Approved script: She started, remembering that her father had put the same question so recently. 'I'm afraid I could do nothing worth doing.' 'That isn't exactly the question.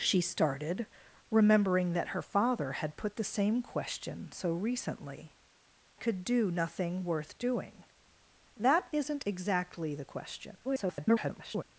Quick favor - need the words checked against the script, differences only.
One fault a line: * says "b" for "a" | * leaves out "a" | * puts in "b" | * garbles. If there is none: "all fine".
* leaves out "I'm afraid I"
* garbles